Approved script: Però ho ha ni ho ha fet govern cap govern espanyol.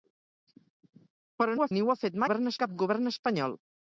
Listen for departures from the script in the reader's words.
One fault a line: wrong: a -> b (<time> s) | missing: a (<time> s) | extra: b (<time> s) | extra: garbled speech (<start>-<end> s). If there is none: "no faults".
no faults